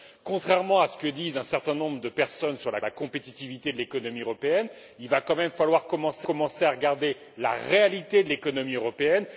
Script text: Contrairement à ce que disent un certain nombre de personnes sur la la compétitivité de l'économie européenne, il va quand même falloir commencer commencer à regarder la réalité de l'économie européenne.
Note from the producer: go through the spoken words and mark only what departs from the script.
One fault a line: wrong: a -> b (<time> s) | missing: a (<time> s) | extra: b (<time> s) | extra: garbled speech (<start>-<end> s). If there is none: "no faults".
no faults